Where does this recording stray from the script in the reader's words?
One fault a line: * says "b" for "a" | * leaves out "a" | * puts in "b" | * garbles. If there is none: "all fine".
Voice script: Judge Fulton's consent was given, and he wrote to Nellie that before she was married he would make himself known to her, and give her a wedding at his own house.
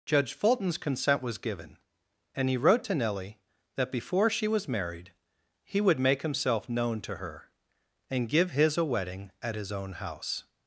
* says "his" for "her"